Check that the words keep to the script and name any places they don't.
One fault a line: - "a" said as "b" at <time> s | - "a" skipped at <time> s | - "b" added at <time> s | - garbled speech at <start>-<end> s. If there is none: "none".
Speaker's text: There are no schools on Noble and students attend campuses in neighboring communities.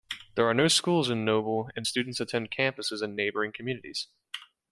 - "on" said as "in" at 1.1 s